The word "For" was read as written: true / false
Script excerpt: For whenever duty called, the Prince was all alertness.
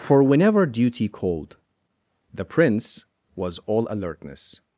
true